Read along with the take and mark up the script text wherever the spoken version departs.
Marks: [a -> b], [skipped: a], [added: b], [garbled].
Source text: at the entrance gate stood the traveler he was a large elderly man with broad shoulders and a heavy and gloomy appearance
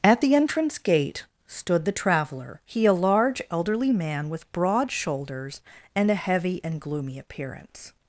at the entrance gate stood the traveler he [skipped: was] a large elderly man with broad shoulders and a heavy and gloomy appearance